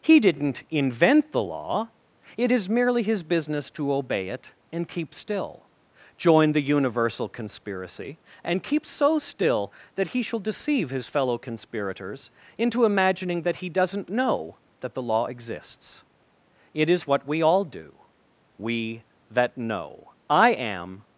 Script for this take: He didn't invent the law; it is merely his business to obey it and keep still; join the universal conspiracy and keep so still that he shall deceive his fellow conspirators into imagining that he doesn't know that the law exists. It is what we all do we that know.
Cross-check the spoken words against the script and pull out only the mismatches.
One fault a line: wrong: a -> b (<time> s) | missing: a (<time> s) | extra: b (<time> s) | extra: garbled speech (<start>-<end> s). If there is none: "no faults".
extra: I am (20.3 s)